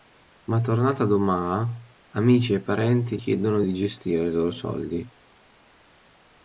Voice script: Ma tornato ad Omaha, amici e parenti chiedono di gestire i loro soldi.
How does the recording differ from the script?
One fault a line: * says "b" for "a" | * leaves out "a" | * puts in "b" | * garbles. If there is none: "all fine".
all fine